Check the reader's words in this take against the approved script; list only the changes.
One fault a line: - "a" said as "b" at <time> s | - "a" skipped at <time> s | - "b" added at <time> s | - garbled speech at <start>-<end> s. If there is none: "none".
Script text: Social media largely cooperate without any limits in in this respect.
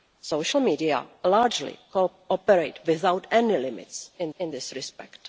none